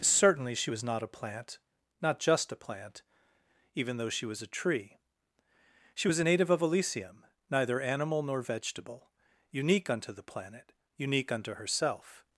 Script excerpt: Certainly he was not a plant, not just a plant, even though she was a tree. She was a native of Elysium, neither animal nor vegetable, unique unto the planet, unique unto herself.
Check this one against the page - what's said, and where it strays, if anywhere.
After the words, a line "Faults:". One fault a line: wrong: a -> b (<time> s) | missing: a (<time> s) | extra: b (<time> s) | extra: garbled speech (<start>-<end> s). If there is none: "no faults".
Certainly she was not a plant, not just a plant, even though she was a tree. She was a native of Elysium, neither animal nor vegetable, unique unto the planet, unique unto herself.
Faults:
wrong: he -> she (0.6 s)